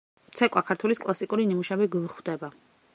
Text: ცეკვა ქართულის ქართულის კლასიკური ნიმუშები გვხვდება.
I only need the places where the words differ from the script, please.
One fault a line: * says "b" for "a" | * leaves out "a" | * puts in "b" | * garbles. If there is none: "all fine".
* leaves out "ქართულის"